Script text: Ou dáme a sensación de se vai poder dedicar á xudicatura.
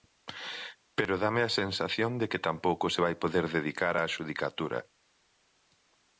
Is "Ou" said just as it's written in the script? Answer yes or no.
no